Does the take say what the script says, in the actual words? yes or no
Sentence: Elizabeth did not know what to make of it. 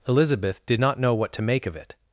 yes